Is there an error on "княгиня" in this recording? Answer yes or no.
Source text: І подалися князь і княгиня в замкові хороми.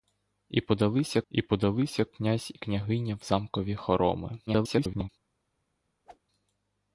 no